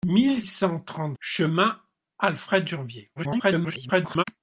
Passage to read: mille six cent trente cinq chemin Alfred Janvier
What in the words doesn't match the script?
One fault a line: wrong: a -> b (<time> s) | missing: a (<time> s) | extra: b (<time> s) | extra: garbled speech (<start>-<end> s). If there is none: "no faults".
missing: six (0.4 s)
missing: cinq (1.2 s)
extra: garbled speech (3.2-4.2 s)